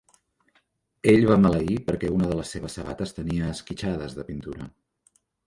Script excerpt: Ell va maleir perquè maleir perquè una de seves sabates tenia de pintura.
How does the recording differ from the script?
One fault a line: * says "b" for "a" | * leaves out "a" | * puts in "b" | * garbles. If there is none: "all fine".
* leaves out "maleir perquè"
* puts in "les"
* puts in "esquitxades"